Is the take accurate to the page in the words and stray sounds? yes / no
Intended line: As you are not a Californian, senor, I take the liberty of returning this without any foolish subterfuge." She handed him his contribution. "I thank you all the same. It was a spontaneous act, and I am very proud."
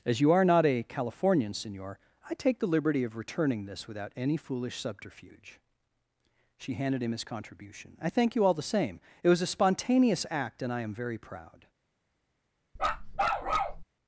no